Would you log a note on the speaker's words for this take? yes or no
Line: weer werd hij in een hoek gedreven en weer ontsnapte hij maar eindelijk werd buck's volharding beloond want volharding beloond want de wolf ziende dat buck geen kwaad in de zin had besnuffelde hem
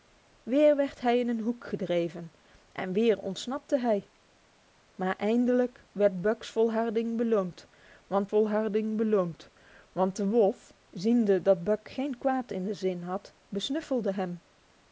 no